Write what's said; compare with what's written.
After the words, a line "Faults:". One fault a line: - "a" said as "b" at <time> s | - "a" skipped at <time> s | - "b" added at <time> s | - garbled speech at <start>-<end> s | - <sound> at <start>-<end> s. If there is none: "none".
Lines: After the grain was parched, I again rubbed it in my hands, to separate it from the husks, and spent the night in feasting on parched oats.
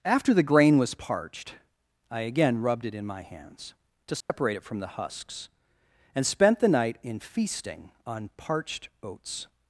After the grain was parched, I again rubbed it in my hands, to separate it from the husks, and spent the night in feasting on parched oats.
Faults:
- dropout at 4.2-4.3 s